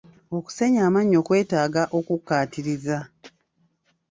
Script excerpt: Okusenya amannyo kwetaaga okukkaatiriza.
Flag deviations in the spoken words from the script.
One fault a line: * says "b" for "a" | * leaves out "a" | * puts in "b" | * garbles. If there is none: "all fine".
all fine